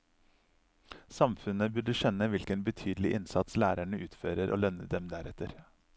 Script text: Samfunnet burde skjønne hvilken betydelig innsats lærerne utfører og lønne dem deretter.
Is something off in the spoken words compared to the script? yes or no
no